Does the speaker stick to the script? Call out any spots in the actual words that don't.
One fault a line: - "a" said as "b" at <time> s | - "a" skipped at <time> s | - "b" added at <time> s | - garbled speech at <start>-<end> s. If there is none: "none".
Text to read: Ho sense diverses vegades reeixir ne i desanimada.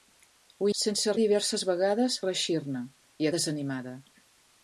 none